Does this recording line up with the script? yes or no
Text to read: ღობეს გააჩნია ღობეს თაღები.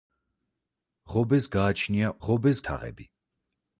yes